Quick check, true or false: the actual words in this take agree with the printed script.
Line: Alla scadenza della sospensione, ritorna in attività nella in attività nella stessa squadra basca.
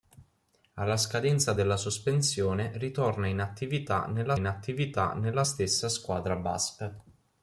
true